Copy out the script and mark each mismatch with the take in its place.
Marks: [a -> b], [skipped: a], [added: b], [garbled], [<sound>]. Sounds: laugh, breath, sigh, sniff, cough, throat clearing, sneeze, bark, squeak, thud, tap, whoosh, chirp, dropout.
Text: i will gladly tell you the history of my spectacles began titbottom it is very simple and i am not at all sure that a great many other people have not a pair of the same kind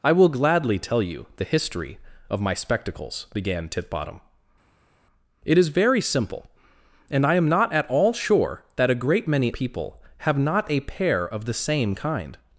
i will gladly tell you the history of my spectacles began titbottom it is very simple and i am not at all sure that a great many [skipped: other] people have not a pair of the same kind